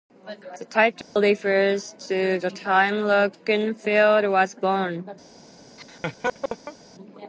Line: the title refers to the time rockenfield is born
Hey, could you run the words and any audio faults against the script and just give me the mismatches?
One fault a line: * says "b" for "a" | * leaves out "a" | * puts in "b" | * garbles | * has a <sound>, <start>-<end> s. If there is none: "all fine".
* has a dropout, 1.0-1.2 s
* says "was" for "is"
* has a laugh, 5.8-6.8 s